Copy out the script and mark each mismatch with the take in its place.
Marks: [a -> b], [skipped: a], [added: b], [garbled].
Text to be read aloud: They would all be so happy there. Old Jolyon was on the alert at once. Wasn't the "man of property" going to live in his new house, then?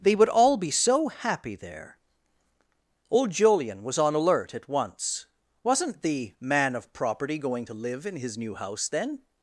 They would all be so happy there. Old Jolyon was on [skipped: the] alert at once. Wasn't the "man of property" going to live in his new house, then?